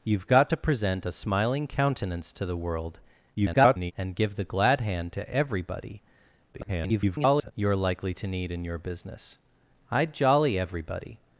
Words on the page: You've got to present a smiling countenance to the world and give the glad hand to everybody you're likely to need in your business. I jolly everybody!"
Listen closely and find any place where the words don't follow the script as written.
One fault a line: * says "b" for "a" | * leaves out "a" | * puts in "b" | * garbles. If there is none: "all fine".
* garbles
* garbles